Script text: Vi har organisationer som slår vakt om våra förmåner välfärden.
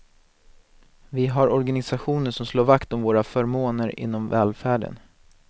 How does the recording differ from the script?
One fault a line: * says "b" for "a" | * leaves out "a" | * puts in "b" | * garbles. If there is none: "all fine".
* puts in "inom"